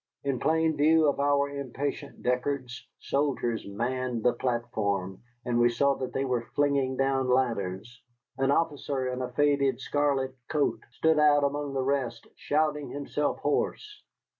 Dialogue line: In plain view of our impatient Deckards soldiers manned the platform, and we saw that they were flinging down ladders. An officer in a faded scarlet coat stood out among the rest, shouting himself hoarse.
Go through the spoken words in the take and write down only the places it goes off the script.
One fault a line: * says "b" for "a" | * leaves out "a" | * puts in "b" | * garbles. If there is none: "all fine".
all fine